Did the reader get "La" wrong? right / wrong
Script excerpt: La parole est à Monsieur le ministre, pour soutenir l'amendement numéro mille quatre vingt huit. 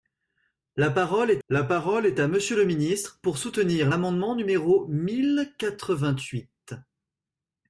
right